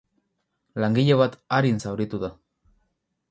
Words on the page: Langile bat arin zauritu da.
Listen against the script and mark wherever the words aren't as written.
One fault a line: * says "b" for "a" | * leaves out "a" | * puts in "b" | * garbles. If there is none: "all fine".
all fine